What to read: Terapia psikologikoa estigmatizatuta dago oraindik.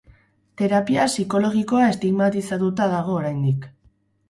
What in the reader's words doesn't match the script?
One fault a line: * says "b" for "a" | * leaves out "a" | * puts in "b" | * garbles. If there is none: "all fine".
all fine